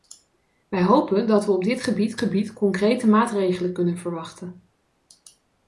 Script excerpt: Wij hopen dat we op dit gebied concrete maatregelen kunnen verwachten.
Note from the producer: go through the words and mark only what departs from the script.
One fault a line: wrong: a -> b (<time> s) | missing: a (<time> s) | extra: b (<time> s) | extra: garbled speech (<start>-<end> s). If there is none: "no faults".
extra: gebied (2.2 s)